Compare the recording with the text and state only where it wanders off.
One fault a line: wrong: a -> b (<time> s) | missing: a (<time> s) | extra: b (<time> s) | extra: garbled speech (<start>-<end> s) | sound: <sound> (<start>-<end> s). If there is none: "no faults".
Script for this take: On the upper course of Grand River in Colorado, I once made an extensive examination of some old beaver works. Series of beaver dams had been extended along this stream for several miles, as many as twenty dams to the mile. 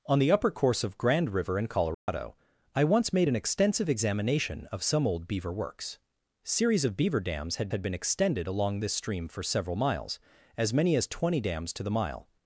sound: dropout (1.9-2.1 s)
extra: had (7.7 s)